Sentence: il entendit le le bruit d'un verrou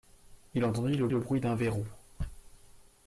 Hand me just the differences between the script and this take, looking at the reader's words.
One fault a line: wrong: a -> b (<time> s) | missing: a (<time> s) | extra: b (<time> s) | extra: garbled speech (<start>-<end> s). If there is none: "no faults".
no faults